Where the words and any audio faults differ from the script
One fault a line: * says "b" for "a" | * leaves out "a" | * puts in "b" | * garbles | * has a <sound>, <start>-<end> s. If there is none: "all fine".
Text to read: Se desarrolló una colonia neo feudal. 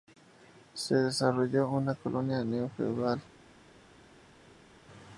all fine